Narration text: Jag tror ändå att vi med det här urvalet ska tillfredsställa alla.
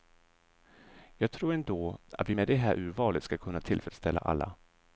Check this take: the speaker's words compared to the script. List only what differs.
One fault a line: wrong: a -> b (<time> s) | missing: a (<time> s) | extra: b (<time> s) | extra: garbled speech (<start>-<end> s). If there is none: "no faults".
extra: kunna (3.4 s)